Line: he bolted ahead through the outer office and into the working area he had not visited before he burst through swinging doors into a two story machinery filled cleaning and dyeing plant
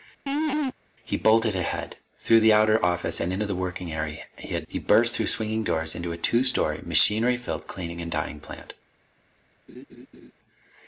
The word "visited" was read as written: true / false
false